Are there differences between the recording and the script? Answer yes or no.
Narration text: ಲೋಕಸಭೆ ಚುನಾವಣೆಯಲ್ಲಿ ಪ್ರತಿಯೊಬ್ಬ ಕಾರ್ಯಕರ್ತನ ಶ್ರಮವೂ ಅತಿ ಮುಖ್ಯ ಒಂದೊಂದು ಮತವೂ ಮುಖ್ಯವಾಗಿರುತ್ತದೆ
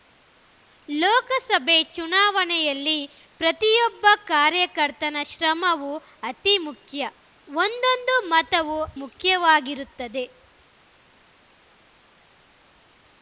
no